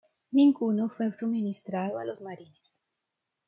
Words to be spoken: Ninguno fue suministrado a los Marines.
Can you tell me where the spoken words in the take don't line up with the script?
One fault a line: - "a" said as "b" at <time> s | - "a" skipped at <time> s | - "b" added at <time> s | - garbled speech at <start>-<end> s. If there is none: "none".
none